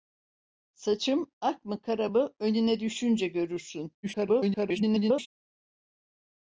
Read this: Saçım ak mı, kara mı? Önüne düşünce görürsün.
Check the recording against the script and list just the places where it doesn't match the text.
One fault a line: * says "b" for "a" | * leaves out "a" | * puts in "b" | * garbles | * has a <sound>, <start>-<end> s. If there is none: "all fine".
* garbles